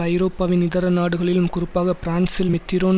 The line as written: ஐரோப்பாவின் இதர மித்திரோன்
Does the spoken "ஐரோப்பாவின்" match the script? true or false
true